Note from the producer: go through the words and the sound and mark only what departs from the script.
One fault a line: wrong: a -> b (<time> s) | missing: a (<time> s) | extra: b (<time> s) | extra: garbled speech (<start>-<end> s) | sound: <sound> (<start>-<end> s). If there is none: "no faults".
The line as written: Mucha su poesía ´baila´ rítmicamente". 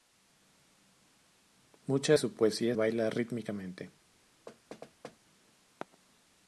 sound: thud (4.5-5.2 s)